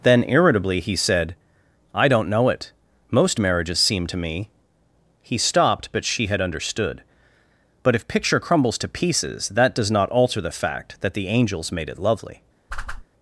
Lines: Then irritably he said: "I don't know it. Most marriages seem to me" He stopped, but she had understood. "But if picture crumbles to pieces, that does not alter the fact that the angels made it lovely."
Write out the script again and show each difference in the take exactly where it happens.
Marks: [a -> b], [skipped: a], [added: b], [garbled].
Then irritably he said: "I don't know it. Most marriages seem to me" He stopped, but she had understood. "But if picture crumbles to pieces, that does not alter the fact that the angels made it lovely."